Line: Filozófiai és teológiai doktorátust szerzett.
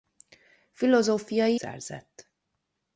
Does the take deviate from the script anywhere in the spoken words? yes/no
yes